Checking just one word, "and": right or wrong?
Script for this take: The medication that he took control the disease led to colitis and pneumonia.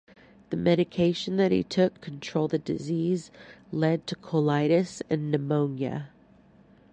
right